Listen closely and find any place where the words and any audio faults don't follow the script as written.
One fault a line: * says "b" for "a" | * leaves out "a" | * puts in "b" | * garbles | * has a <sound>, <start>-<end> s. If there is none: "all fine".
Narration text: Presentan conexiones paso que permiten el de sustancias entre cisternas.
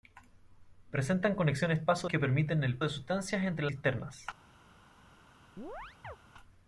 * has a chirp, 5.6-6.2 s